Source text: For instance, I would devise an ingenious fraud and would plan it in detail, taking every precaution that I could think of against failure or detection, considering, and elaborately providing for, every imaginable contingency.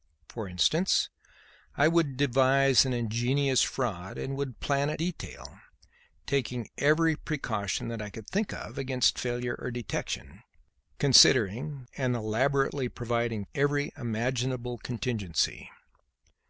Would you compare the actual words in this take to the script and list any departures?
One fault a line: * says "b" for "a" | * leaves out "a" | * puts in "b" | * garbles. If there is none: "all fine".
* leaves out "in"
* leaves out "for"